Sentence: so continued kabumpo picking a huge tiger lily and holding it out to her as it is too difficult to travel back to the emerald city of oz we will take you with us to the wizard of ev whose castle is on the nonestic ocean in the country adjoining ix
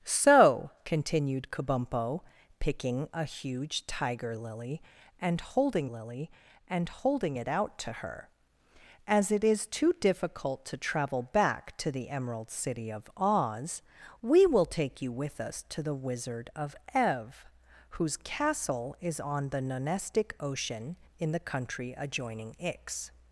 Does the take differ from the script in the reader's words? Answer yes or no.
yes